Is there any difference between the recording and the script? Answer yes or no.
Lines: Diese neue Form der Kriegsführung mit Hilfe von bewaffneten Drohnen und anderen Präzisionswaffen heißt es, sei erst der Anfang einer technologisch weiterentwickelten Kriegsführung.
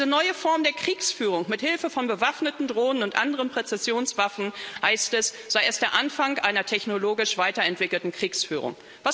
no